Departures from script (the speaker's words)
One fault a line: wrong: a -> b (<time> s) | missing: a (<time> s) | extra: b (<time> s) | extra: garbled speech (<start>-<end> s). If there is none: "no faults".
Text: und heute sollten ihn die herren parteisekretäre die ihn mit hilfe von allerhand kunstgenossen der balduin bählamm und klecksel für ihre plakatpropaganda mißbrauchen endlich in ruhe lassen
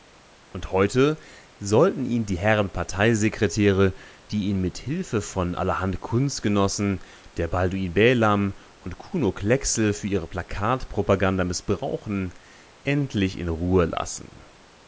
extra: kuno (9.0 s)